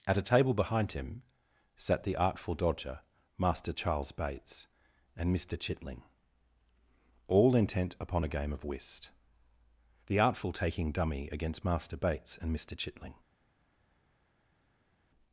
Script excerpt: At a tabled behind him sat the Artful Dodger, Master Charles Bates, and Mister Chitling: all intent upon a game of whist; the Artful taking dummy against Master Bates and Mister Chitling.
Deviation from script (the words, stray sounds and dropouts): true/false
true